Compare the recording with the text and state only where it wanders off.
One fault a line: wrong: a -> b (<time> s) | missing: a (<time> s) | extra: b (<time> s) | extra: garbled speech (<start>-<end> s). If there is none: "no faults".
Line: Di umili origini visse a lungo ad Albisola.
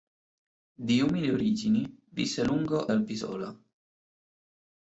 missing: ad (2.9 s)